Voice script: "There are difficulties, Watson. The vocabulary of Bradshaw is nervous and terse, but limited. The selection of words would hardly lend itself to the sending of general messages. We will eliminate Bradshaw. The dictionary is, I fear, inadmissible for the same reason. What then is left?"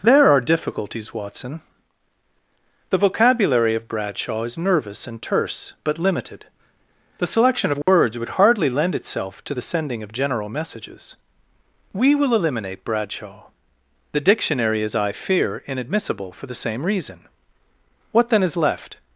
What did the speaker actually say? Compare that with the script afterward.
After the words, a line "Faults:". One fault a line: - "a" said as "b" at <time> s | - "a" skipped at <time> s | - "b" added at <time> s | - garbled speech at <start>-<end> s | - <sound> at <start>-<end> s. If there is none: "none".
"There are difficulties, Watson. The vocabulary of Bradshaw is nervous and terse, but limited. The selection of words would hardly lend itself to the sending of general messages. We will eliminate Bradshaw. The dictionary is, I fear, inadmissible for the same reason. What then is left?"
Faults:
- dropout at 7.8-7.9 s